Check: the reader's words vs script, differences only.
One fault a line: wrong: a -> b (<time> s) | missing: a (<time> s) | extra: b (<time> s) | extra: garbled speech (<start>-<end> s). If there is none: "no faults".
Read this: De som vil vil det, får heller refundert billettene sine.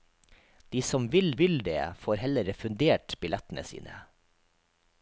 no faults